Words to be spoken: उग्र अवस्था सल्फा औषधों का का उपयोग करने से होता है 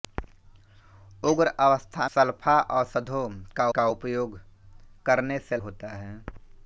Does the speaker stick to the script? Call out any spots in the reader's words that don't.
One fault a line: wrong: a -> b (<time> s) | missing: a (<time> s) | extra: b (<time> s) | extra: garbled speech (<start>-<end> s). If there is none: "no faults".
no faults